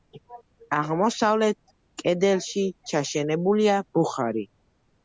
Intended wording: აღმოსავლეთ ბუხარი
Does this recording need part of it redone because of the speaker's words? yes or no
yes